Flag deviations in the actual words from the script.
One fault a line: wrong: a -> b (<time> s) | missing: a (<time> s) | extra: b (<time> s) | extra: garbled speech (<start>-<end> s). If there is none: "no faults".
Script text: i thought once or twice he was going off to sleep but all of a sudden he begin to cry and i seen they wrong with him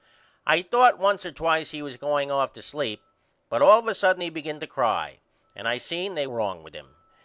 no faults